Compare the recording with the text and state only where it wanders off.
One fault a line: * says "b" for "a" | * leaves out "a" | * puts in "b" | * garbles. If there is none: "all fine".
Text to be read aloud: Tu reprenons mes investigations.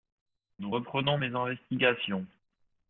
* says "Nous" for "Tu"